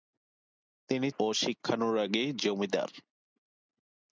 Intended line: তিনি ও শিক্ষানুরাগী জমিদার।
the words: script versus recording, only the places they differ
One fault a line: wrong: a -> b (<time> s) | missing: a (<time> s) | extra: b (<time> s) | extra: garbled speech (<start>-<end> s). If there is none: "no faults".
no faults